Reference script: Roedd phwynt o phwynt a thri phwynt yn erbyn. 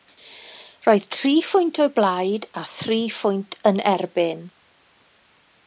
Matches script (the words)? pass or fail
fail